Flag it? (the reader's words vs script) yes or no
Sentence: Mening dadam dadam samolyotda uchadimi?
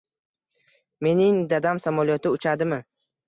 yes